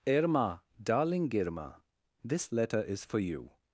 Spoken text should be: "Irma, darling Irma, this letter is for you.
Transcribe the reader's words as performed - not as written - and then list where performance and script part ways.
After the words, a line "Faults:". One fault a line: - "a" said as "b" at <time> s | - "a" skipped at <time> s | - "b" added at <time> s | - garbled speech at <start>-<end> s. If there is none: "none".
"Irma, darling Irma, this letter is for you.
Faults:
none